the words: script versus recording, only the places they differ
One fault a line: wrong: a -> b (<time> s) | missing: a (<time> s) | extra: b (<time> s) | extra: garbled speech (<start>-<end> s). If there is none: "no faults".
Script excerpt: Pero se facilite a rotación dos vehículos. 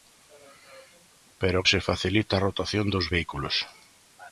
no faults